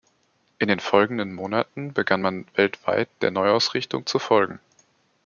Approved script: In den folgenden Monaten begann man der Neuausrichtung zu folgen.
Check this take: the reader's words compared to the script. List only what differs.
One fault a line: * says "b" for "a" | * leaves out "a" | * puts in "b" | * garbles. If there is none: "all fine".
* puts in "weltweit"